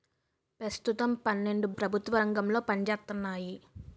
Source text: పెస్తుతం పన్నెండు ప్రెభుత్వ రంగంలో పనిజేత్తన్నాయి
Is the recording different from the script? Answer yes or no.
no